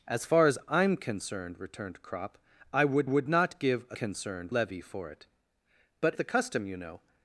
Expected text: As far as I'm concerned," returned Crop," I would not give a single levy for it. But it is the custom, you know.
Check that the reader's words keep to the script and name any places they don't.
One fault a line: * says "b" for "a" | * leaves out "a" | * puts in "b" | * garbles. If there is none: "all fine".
* puts in "would"
* says "concerned" for "single"
* leaves out "it is"